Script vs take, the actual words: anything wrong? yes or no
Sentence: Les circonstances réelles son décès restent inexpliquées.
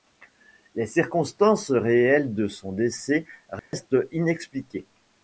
yes